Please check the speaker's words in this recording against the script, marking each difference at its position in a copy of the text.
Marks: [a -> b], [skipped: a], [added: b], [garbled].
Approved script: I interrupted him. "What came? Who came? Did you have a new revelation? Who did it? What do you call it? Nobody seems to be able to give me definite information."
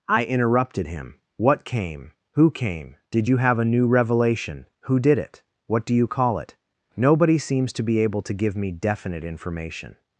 I interrupted him. "What came? Who came? Did you have a new revelation? Who did it? What do you call it? Nobody seems to be able to give me definite information."